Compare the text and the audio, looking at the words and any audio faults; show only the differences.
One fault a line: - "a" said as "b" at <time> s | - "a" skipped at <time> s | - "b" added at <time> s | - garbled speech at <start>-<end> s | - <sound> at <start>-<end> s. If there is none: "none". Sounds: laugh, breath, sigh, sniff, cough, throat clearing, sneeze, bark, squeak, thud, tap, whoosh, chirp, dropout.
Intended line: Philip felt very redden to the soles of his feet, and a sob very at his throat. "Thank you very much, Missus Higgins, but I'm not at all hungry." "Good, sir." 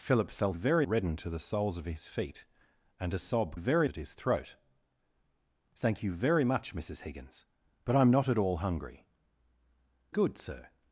none